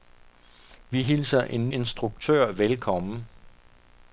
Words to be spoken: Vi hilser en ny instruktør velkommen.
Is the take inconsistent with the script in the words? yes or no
yes